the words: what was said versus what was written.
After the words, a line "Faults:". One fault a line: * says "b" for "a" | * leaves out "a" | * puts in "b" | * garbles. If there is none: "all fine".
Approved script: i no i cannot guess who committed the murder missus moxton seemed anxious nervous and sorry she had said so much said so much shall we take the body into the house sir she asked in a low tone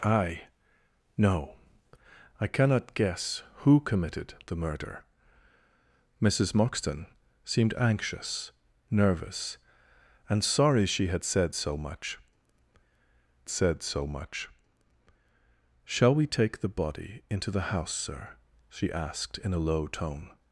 i no i cannot guess who committed the murder missus moxton seemed anxious nervous and sorry she had said so much said so much shall we take the body into the house sir she asked in a low tone
Faults:
all fine